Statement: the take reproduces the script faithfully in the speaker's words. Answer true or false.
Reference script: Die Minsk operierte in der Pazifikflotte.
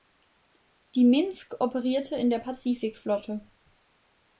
true